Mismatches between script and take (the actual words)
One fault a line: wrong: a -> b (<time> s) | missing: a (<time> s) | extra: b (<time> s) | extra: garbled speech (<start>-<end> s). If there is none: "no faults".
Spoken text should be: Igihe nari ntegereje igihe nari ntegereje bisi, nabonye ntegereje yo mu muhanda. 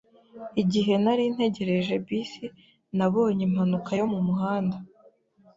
missing: igihe nari ntegereje (1.9 s)
wrong: ntegereje -> impanuka (3.5 s)